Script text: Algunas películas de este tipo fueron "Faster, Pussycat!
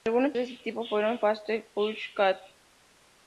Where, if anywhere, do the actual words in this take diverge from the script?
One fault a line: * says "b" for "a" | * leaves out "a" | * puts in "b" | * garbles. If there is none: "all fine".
* leaves out "películas"